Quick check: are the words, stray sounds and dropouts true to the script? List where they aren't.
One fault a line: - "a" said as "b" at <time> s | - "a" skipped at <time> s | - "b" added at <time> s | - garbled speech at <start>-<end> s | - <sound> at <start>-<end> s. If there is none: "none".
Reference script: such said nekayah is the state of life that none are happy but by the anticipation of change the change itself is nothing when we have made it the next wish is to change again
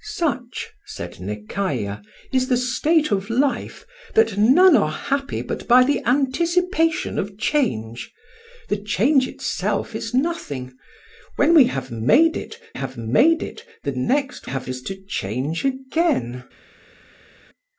- "have made it" added at 12.7 s
- "wish" said as "have" at 14.4 s